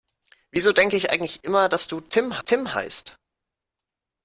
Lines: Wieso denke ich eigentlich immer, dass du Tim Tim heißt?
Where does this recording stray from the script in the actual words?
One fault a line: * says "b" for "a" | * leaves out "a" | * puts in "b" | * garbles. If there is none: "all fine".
all fine